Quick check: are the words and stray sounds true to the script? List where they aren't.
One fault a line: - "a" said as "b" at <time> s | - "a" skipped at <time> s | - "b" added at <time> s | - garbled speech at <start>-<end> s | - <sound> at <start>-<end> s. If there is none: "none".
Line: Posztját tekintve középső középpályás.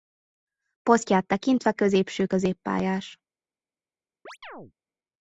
- chirp at 4.3-4.7 s